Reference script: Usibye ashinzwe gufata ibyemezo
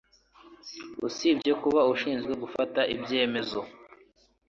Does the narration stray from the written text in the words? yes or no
yes